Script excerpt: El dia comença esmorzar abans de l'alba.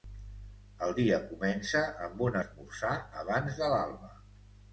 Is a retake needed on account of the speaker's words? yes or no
yes